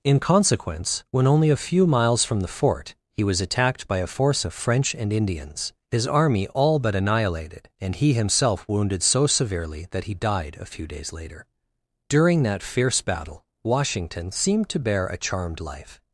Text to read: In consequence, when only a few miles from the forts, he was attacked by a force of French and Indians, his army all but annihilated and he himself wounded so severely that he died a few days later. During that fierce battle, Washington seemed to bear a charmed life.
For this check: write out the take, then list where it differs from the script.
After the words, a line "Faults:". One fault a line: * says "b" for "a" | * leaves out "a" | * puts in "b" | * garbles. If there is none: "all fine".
In consequence, when only a few miles from the fort, he was attacked by a force of French and Indians, his army all but annihilated and he himself wounded so severely that he died a few days later. During that fierce battle, Washington seemed to bear a charmed life.
Faults:
* says "fort" for "forts"